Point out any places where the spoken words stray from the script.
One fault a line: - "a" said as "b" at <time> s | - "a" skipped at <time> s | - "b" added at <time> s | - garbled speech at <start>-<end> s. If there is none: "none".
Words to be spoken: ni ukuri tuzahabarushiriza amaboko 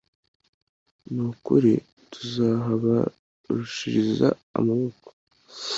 none